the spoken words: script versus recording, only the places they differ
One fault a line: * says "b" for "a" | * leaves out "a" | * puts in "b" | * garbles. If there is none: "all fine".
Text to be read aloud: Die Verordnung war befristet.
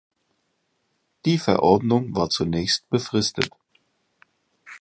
* puts in "zunächst"